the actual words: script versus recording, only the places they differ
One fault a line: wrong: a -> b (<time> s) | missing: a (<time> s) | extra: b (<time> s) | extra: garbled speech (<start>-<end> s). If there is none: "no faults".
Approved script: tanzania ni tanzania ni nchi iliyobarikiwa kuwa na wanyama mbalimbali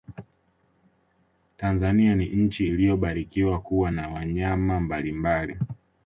missing: tanzania ni (2.2 s)